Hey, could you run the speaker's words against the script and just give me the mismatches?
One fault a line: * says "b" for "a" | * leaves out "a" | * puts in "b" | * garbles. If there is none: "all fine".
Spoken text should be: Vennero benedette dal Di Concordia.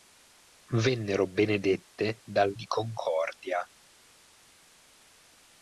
all fine